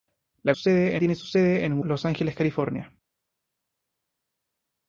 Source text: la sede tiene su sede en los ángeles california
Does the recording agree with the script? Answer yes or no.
yes